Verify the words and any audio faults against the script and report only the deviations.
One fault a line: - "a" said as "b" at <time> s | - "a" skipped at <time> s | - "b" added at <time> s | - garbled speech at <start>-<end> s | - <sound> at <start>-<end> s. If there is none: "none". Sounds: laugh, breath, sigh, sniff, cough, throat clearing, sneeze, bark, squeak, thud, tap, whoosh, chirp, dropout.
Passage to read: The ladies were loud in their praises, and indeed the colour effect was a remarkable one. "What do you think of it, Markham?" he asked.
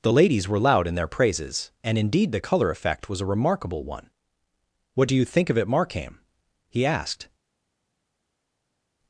none